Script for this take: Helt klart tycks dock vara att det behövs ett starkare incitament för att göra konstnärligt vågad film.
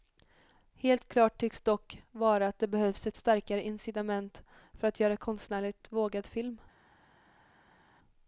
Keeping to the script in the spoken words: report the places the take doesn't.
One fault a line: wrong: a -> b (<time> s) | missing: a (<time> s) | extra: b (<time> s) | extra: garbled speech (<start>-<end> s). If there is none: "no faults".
no faults